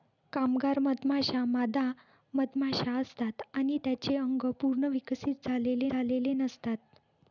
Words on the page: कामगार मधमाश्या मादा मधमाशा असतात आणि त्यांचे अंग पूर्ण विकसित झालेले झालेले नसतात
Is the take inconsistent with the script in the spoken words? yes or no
no